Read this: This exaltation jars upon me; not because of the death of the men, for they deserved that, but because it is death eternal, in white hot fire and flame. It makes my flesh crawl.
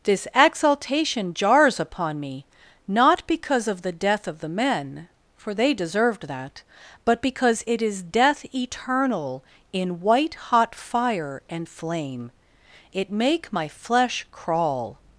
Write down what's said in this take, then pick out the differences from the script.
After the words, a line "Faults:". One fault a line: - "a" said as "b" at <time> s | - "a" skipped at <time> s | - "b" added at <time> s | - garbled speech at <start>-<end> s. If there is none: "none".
This exaltation jars upon me; not because of the death of the men, for they deserved that, but because it is death eternal, in white hot fire and flame. It make my flesh crawl.
Faults:
- "makes" said as "make" at 13.1 s